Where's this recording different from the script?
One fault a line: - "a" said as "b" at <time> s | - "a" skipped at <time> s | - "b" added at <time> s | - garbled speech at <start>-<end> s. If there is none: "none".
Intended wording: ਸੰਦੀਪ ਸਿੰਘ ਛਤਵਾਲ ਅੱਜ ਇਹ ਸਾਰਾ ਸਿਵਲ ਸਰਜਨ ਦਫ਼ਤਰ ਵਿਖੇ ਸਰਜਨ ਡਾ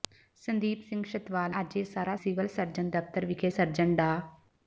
none